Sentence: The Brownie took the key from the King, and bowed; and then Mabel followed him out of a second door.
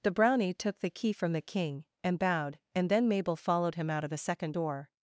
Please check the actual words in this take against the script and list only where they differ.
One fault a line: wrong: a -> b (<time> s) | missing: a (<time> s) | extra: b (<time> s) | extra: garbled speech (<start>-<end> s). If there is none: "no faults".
wrong: a -> the (4.1 s)